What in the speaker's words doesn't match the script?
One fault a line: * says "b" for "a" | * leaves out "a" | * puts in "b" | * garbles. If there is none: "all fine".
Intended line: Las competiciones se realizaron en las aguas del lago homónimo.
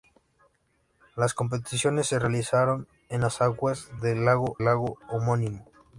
* puts in "lago"